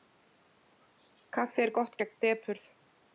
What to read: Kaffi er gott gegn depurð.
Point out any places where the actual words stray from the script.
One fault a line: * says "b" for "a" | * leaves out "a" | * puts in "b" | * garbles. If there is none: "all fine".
all fine